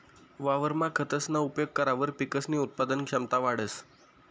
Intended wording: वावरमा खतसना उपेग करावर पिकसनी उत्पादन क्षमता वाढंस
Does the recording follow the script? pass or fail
pass